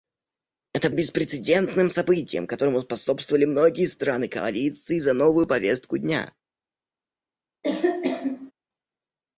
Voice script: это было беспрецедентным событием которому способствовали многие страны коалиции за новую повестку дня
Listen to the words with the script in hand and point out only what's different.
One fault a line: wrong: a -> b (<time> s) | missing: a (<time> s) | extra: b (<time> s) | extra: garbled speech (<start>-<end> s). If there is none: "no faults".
missing: было (0.9 s)